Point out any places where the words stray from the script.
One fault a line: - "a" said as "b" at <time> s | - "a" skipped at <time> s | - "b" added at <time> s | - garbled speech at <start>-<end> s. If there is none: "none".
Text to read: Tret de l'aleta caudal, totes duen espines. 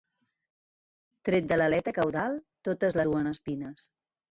none